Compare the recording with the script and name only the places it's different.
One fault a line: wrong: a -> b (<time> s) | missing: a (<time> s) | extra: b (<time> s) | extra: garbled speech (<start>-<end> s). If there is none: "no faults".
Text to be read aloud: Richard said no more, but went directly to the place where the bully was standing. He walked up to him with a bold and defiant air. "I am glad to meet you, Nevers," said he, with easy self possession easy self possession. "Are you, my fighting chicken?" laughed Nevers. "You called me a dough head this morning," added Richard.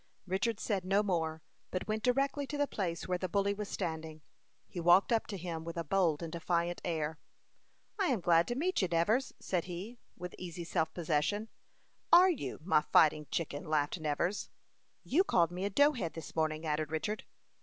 missing: easy self possession (11.5 s)